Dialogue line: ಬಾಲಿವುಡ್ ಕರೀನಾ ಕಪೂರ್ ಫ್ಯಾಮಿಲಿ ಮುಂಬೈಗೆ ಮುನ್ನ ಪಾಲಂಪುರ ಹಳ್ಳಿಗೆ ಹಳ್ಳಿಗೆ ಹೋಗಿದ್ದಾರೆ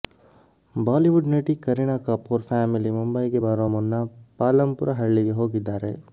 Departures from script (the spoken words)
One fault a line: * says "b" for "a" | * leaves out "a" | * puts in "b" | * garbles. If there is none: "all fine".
* puts in "ನಟಿ"
* puts in "ಬರೋ"
* leaves out "ಹಳ್ಳಿಗೆ"